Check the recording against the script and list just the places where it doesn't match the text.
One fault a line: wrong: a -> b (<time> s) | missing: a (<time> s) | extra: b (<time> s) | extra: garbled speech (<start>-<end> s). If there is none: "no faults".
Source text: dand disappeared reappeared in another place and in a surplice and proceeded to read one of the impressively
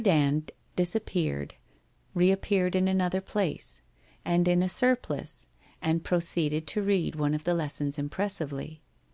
extra: lessons (7.5 s)